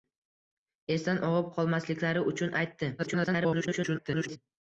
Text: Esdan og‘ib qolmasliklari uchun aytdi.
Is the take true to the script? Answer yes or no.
no